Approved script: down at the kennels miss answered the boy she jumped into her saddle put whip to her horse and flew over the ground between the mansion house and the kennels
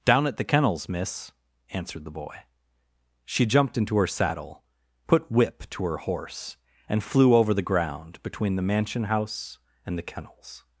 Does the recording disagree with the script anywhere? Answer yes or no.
no